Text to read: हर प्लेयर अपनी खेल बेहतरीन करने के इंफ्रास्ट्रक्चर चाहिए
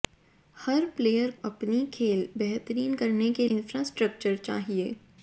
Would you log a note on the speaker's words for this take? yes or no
no